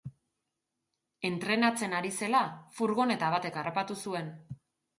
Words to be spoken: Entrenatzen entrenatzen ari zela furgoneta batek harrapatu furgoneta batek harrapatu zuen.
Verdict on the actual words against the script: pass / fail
fail